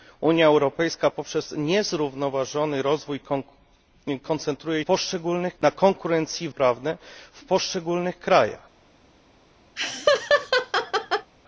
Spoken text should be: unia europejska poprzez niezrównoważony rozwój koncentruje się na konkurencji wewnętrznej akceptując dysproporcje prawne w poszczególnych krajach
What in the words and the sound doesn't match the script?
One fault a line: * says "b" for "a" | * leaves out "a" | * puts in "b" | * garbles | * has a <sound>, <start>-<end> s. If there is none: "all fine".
* says "poszczególnych" for "się"
* leaves out "wewnętrznej akceptując dysproporcje"
* has a laugh, 9.8-11.3 s